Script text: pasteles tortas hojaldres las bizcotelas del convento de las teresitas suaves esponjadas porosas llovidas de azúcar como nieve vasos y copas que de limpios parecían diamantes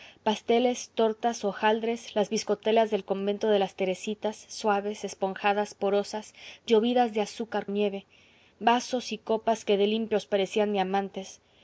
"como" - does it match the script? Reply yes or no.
no